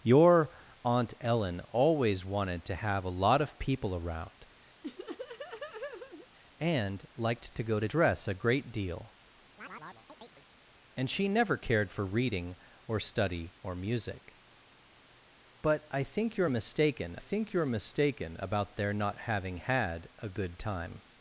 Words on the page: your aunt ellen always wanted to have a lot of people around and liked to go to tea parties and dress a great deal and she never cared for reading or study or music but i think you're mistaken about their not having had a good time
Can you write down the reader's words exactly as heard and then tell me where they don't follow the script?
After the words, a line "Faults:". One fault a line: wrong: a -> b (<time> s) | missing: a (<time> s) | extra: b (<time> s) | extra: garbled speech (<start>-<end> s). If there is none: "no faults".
your aunt ellen always wanted to have a lot of people around and liked to go to dress a great deal and she never cared for reading or study or music but i think you're mistaken think you're mistaken about their not having had a good time
Faults:
missing: tea parties and (7.9 s)
extra: think you're mistaken (17.2 s)